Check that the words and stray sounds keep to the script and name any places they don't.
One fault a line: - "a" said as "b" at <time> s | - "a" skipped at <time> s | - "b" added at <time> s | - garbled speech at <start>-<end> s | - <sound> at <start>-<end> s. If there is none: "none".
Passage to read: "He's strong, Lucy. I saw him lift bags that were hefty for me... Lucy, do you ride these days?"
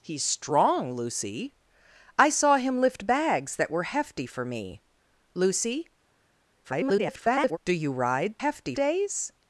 - garbled speech at 6.6-7.6 s
- "these" said as "hefty" at 8.4 s